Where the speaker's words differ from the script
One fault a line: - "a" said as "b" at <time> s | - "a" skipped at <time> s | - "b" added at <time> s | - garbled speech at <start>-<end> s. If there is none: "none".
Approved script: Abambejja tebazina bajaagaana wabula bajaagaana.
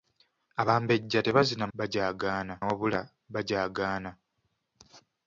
none